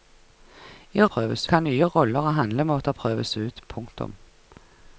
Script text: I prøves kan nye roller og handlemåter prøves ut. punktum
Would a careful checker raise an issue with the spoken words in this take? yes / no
no